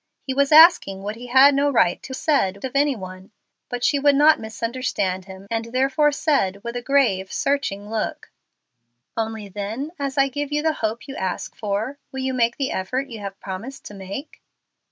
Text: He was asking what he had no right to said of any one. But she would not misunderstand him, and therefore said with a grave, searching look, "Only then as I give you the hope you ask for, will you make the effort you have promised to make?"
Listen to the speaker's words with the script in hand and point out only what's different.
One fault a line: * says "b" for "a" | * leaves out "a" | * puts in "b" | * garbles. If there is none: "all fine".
all fine